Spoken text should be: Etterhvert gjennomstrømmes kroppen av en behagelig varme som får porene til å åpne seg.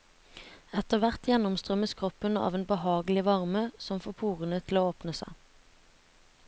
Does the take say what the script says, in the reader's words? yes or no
yes